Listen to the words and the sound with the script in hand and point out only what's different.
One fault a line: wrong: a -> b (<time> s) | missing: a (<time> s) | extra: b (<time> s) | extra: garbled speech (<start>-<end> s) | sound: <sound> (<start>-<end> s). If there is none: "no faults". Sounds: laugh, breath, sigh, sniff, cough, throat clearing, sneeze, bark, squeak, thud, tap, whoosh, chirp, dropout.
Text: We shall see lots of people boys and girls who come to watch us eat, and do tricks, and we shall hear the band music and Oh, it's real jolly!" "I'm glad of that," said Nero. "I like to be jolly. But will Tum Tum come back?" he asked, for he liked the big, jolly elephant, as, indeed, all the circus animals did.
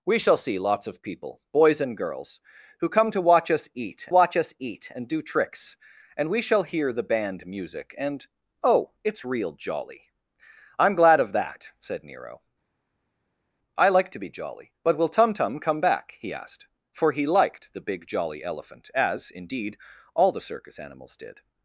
extra: watch us eat (4.1 s)